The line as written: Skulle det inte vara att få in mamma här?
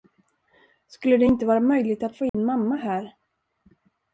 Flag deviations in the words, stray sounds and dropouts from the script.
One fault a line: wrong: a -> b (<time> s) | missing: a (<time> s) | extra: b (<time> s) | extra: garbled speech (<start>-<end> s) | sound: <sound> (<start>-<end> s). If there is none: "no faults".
extra: möjligt (1.6 s)
sound: dropout (2.3-2.3 s)